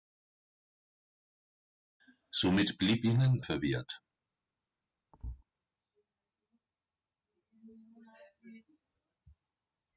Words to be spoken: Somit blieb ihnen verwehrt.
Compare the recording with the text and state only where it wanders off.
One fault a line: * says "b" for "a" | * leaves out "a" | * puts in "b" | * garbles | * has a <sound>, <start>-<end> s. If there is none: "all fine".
* has a thud, 5.1-5.4 s